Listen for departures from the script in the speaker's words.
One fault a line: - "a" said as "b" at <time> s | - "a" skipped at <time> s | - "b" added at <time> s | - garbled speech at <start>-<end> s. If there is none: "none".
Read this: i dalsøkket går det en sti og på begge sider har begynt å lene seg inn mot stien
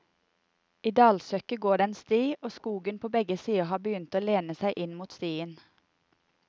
- "skogen" added at 2.5 s